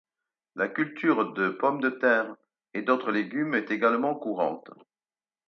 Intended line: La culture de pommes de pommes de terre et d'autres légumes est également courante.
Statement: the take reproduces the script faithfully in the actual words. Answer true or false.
false